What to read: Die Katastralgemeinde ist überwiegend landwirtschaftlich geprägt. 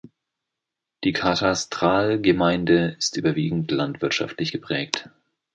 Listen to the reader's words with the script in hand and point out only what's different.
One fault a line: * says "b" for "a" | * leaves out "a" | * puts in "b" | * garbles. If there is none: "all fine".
all fine